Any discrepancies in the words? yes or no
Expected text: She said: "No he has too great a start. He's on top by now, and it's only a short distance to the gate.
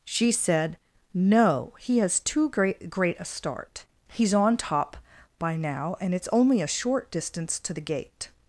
yes